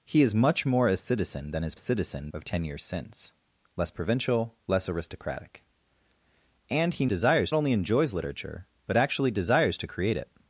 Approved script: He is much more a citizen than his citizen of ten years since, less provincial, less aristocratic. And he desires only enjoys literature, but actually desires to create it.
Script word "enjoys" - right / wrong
right